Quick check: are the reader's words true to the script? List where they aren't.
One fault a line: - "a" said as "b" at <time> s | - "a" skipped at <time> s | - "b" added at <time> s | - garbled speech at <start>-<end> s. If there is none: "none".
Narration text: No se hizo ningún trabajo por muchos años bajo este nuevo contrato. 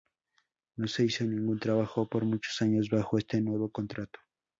none